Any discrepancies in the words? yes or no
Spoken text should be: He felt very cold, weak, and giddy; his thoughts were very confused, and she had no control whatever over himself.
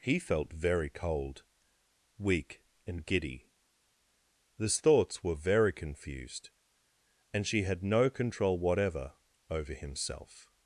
no